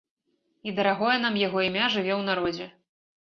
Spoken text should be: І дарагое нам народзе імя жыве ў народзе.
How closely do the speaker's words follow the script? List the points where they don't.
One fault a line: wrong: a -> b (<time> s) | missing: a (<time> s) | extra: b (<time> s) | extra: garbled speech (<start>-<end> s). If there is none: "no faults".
wrong: народзе -> яго (1.4 s)